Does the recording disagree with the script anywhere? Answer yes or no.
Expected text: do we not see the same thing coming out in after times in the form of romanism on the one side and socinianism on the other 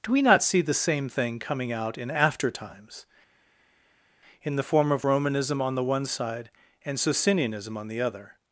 no